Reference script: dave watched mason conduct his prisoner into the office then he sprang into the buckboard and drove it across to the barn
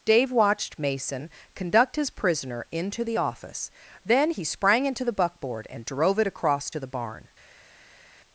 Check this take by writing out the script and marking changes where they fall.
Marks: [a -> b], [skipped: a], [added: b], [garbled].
dave watched mason conduct his prisoner into the office then he sprang into the buckboard and drove it across to the barn